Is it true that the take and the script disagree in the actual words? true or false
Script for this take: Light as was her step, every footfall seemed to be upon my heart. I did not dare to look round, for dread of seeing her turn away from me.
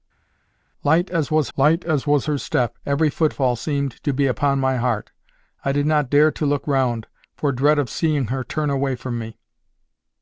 true